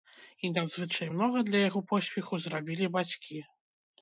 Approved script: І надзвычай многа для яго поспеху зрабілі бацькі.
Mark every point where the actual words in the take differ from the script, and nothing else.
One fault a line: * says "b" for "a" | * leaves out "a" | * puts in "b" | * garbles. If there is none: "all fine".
all fine